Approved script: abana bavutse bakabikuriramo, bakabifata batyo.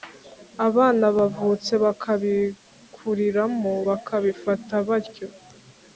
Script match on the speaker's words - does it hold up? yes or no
yes